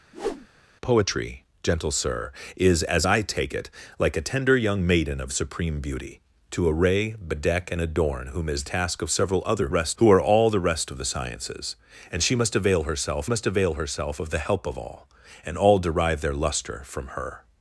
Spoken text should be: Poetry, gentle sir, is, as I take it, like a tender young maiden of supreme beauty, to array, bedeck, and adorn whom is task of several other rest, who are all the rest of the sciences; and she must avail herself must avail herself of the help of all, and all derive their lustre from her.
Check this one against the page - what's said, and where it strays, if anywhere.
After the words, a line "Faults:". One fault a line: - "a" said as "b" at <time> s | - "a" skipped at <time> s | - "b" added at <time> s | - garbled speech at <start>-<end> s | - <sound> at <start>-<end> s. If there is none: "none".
Poetry, gentle sir, is, as I take it, like a tender young maiden of supreme beauty, to array, bedeck, and adorn whom is task of several other rest, who are all the rest of the sciences; and she must avail herself must avail herself of the help of all, and all derive their lustre from her.
Faults:
- whoosh at 0.1-0.5 s